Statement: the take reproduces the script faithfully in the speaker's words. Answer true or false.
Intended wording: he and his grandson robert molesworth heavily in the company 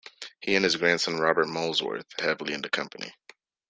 true